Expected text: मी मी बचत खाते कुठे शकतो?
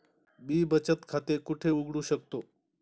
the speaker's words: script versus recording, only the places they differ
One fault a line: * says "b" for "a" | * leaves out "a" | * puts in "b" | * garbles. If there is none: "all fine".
* leaves out "मी"
* puts in "उघडू"